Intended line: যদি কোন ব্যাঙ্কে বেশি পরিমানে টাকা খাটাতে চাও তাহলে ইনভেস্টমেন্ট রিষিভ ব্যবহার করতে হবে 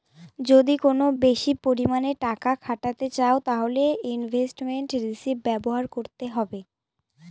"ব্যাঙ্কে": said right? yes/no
no